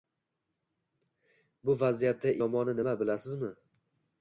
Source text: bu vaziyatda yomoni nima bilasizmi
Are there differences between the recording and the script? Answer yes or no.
no